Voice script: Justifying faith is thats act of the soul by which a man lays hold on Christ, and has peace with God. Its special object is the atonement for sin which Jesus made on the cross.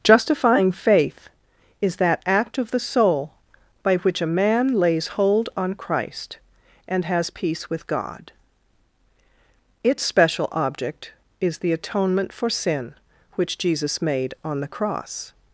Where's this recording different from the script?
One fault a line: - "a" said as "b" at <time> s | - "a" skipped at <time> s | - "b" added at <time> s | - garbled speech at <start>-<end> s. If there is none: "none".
- "thats" said as "that" at 2.0 s